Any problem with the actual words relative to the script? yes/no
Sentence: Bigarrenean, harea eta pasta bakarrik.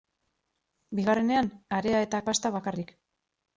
no